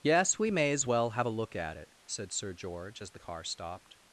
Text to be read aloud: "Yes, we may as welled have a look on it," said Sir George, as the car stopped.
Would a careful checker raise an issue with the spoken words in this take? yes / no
yes